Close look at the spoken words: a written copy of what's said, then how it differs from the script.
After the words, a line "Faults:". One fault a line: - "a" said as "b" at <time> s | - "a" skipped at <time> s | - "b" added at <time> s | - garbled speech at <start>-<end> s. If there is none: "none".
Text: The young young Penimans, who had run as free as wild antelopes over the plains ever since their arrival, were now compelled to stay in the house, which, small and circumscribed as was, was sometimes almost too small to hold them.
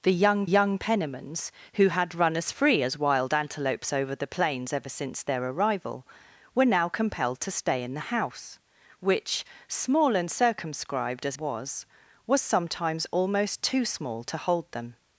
The young young Penimans, who had run as free as wild antelopes over the plains ever since their arrival, were now compelled to stay in the house, which, small and circumscribed as was, was sometimes almost too small to hold them.
Faults:
none